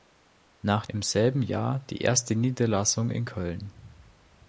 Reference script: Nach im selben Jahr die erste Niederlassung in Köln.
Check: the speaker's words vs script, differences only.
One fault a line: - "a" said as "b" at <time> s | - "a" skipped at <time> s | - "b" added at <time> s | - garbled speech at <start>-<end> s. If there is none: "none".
none